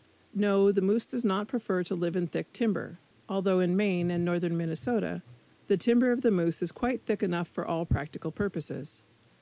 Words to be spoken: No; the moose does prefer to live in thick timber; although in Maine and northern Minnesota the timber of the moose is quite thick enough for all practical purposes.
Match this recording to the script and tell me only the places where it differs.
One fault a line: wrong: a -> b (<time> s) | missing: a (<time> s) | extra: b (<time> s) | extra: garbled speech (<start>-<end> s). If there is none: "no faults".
extra: not (1.2 s)